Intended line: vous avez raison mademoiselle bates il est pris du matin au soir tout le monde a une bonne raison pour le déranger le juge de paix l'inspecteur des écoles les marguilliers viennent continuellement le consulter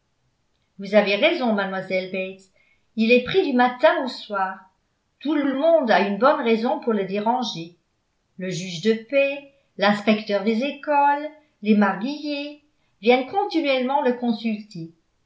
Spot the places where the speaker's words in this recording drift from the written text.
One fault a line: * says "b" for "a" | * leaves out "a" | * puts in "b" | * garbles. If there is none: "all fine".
* puts in "le"